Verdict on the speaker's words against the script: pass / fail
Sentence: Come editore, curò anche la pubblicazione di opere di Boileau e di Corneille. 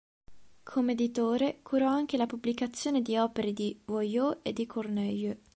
pass